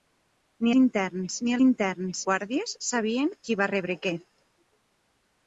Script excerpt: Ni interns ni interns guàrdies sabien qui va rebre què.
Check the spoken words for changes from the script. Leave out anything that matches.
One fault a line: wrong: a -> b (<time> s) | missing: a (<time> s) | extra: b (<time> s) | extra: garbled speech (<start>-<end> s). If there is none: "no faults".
no faults